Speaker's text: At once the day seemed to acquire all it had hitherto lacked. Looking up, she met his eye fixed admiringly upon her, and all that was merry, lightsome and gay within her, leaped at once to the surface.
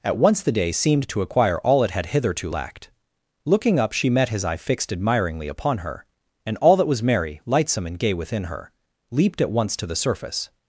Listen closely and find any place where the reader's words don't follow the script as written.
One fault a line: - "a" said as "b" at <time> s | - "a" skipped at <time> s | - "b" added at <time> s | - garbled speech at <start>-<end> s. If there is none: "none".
none